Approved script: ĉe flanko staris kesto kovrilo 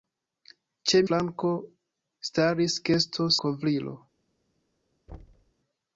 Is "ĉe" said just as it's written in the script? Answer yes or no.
yes